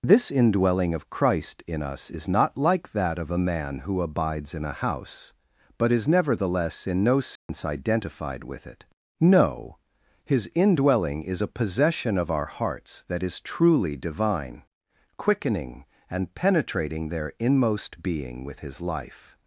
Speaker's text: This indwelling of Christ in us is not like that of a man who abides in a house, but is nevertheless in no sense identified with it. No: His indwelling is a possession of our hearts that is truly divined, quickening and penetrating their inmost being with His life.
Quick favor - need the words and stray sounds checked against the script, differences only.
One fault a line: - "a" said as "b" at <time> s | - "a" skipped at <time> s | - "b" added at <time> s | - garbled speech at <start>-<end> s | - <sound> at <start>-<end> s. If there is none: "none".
- dropout at 7.4-7.5 s
- "divined" said as "divine" at 14.0 s